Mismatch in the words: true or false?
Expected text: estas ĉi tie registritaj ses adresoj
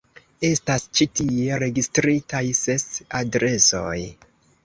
false